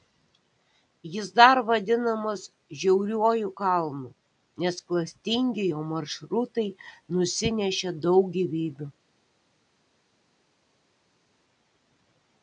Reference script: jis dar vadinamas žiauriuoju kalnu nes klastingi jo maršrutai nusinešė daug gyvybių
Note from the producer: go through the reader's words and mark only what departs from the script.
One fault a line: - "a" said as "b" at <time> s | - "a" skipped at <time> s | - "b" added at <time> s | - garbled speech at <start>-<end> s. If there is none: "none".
none